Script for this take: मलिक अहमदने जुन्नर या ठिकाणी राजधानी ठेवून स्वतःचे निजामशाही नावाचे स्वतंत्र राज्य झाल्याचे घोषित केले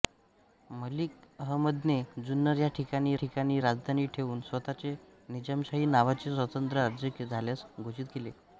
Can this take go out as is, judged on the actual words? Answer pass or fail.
fail